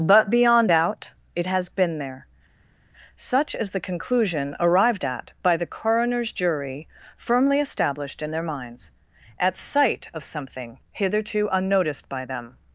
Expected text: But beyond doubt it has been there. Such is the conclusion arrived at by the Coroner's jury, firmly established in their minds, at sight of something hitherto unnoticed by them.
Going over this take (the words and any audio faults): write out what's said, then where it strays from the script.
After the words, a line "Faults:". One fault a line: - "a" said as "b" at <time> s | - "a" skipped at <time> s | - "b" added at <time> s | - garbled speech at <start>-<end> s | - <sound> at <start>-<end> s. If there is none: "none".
But beyond doubt it has been there. Such is the conclusion arrived at by the Coroner's jury, firmly established in their minds, at sight of something hitherto unnoticed by them.
Faults:
none